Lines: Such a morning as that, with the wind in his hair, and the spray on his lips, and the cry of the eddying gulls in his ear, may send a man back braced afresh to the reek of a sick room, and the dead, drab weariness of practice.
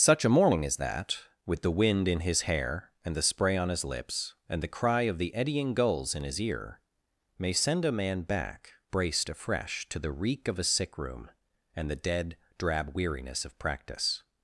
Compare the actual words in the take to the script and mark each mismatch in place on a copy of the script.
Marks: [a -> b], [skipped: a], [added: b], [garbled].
Such a morning as that, with the wind in his hair, and the spray on his lips, and the cry of the eddying gulls in his ear, may send a man back braced afresh to the reek of a sick room, and the dead, drab weariness of practice.